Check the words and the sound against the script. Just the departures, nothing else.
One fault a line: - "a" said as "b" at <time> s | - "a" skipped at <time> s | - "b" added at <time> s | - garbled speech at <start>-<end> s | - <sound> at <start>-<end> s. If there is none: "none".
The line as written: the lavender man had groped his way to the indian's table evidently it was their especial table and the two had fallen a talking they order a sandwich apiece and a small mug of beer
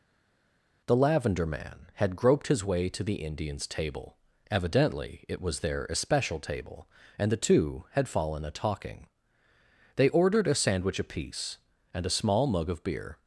- "order" said as "ordered" at 10.1 s